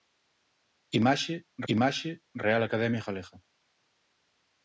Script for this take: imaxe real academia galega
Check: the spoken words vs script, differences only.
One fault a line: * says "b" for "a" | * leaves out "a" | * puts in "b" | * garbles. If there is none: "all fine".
* puts in "imaxe"